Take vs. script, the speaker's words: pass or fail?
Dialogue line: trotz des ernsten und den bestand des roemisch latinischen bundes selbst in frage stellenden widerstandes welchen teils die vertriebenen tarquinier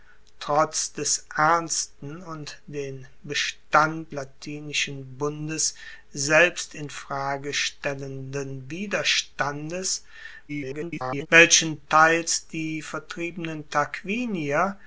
fail